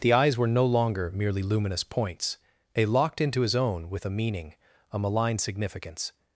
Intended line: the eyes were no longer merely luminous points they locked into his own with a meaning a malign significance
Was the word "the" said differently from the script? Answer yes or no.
no